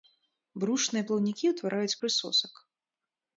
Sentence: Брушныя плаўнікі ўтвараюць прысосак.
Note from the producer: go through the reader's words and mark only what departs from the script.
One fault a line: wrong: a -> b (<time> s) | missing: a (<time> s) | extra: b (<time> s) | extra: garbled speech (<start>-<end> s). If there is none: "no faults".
no faults